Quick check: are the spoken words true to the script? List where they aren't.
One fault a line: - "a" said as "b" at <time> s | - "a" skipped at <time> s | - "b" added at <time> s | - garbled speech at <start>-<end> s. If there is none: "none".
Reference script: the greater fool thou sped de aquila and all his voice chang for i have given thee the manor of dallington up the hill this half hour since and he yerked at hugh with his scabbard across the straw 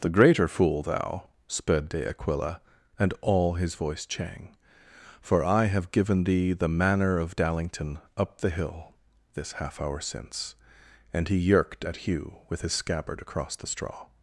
none